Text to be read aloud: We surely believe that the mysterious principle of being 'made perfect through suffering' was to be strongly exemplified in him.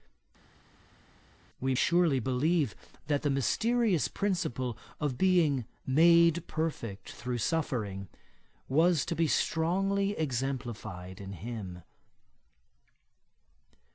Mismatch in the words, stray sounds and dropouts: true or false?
false